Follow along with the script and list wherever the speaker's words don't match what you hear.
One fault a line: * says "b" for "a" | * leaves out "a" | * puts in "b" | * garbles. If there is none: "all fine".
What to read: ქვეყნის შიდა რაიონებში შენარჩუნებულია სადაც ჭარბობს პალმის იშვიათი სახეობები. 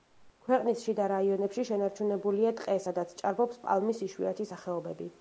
* puts in "ტყე"